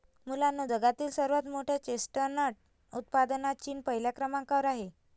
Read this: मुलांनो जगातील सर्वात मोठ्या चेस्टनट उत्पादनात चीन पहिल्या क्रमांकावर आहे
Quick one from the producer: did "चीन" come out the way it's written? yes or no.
yes